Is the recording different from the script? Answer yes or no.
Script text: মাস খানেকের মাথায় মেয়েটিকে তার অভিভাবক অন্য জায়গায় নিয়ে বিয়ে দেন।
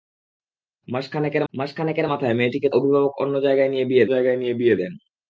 yes